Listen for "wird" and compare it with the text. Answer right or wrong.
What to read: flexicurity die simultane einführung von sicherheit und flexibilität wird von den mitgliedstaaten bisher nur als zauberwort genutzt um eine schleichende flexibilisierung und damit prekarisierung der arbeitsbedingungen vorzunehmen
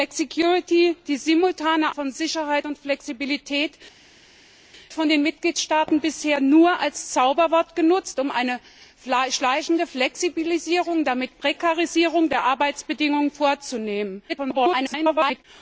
wrong